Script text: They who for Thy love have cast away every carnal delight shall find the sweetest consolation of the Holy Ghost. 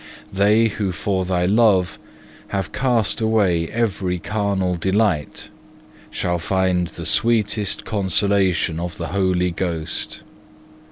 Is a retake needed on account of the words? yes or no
no